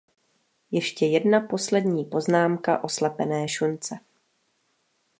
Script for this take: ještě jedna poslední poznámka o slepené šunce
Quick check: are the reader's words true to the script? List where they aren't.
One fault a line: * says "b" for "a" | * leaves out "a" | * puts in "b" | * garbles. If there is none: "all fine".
all fine